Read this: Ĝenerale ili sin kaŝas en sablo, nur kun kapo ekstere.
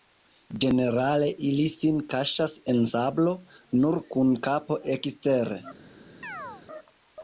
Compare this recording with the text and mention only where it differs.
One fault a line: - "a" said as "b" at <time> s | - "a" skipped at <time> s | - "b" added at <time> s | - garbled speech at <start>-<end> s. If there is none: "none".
none